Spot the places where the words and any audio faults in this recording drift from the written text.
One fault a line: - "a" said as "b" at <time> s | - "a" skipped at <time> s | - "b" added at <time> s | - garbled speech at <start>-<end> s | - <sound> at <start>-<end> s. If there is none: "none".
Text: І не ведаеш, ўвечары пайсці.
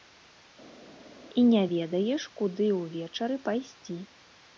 - "куды" added at 2.4 s